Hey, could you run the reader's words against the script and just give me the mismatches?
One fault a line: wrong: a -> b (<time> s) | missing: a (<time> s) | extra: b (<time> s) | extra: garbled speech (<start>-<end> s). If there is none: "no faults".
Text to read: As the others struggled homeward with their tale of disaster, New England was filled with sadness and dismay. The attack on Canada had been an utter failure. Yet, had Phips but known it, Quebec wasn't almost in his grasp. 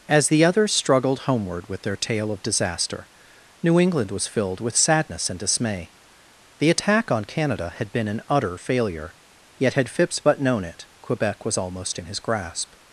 wrong: wasn't -> was (11.4 s)